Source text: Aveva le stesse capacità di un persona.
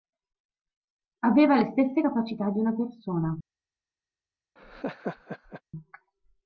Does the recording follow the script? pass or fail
fail